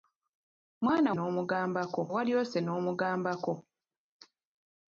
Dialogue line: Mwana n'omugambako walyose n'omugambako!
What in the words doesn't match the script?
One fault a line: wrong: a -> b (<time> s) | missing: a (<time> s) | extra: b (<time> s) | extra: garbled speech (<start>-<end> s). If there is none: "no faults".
no faults